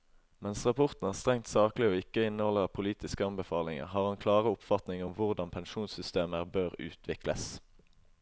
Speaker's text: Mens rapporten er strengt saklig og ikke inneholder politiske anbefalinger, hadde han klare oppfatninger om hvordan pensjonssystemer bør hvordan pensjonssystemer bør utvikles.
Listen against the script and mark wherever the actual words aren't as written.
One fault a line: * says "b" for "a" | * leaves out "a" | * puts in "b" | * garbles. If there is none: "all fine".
* says "har" for "hadde"
* leaves out "hvordan pensjonssystemer bør"